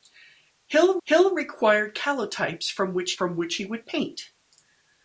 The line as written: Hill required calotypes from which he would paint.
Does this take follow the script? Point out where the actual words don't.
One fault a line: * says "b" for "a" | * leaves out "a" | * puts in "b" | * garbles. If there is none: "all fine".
* puts in "hill"
* puts in "from which"